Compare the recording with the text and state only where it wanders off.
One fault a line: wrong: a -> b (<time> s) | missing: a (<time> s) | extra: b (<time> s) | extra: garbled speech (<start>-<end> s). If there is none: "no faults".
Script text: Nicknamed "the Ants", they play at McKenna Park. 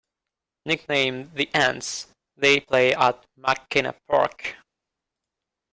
no faults